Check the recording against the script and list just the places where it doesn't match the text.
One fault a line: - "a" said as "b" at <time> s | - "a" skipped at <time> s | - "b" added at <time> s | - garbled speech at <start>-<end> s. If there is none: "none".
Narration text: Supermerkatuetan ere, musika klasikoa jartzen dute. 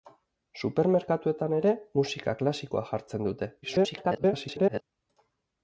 - garbled speech at 3.6-4.8 s